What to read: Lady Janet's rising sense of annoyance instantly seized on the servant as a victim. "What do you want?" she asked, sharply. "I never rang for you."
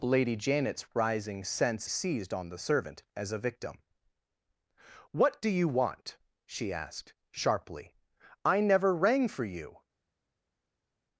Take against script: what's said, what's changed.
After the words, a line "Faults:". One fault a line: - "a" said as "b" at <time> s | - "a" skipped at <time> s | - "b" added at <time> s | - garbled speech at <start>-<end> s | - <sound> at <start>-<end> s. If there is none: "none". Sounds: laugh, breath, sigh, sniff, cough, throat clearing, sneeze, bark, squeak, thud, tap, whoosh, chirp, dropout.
Lady Janet's rising sense seized on the servant as a victim. "What do you want?" she asked, sharply. "I never rang for you."
Faults:
- "of annoyance instantly" skipped at 1.9 s